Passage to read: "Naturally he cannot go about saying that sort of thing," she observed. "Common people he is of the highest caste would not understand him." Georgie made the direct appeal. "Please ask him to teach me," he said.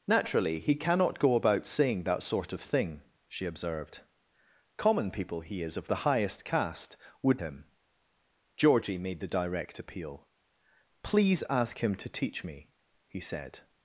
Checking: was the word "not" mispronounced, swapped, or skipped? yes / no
yes